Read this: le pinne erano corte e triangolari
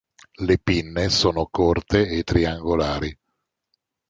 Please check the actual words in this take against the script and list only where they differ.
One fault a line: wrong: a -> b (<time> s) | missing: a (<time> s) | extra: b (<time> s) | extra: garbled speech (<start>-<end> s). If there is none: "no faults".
wrong: erano -> sono (1.1 s)